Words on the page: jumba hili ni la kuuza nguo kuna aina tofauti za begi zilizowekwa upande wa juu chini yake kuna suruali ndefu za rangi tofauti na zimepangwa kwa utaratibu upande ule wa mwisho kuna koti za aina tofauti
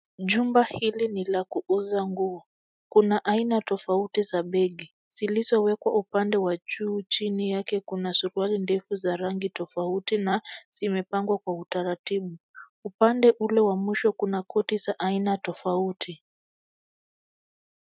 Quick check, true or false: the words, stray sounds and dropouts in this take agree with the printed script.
true